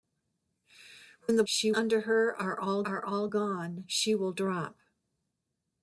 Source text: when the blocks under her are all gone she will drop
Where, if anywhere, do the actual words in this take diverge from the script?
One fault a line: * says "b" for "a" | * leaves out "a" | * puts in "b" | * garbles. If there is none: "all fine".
* says "she" for "blocks"
* puts in "are all"